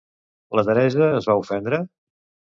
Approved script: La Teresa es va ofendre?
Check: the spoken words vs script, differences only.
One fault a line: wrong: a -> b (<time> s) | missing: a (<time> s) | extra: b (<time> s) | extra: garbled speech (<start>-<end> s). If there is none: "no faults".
no faults